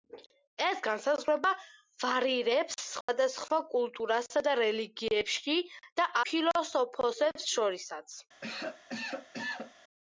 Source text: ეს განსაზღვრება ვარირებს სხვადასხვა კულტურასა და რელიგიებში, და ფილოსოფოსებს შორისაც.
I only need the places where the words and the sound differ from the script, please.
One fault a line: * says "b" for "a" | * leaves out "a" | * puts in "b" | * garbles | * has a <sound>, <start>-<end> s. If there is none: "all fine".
* has a dropout, 3.0-3.1 s
* has a cough, 8.4-9.7 s